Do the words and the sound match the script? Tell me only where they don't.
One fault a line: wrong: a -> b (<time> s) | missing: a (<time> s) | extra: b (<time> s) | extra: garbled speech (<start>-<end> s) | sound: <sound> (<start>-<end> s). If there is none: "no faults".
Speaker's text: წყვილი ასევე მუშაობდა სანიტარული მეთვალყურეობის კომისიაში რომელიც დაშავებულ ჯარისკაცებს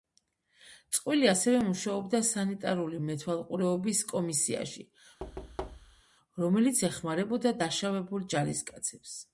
sound: thud (5.2-6.0 s)
extra: ეხმარებოდა (6.9 s)